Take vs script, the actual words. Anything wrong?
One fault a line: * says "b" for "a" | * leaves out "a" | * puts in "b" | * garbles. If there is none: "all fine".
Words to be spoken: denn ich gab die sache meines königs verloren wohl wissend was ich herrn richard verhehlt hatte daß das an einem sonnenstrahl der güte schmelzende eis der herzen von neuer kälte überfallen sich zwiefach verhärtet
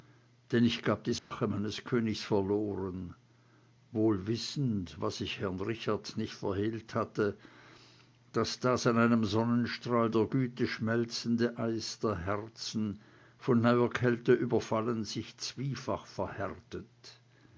* puts in "nicht"